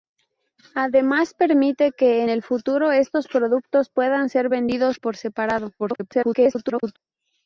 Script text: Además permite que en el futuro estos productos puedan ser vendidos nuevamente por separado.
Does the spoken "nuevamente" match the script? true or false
false